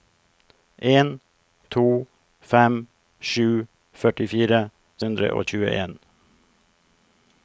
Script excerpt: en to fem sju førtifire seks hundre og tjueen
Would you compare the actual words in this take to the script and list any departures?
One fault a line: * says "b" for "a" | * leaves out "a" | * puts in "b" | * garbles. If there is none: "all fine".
* leaves out "seks"